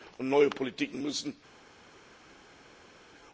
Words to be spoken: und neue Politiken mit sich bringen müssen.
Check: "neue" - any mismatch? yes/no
no